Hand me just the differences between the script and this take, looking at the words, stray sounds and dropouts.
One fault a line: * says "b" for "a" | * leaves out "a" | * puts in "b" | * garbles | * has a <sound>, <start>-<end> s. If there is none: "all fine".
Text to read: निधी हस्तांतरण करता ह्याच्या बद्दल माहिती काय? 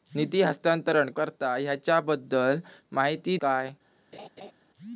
* has a laugh, 4.1-4.5 s